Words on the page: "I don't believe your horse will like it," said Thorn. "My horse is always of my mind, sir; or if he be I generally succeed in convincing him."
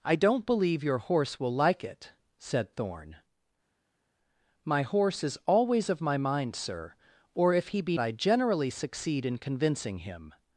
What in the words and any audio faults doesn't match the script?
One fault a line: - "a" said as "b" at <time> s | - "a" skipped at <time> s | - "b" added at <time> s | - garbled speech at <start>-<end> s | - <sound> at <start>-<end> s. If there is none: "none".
none